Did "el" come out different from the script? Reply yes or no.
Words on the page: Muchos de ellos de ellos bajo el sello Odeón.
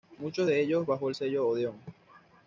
no